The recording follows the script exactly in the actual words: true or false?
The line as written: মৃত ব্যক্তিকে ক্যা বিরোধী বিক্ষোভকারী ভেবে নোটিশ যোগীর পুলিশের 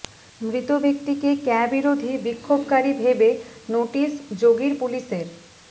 true